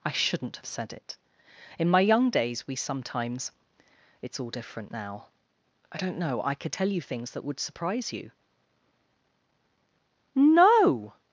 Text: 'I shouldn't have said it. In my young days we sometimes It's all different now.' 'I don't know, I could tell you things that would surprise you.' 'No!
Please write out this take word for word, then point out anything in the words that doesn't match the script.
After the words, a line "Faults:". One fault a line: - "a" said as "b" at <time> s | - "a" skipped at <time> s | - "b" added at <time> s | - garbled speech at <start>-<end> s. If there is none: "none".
'I shouldn't have said it. In my young days we sometimes It's all different now.' 'I don't know, I could tell you things that would surprise you.' 'No!
Faults:
none